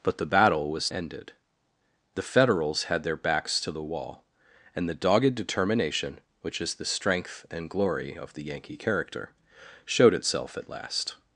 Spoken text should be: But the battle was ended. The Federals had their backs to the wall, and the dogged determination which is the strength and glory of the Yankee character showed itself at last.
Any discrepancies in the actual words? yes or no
no